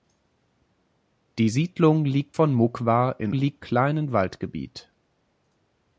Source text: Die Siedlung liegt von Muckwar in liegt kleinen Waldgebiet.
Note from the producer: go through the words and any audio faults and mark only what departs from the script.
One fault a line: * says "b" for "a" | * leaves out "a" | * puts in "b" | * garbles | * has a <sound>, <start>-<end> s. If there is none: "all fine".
all fine